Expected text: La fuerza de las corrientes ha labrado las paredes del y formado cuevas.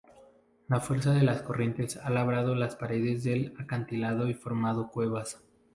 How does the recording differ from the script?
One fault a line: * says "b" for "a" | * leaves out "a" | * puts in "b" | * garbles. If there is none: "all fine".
* puts in "acantilado"